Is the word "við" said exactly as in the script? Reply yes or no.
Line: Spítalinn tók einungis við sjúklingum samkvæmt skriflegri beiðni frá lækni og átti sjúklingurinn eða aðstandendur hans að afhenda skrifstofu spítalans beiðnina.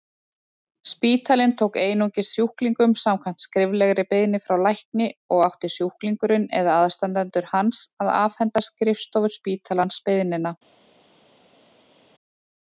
no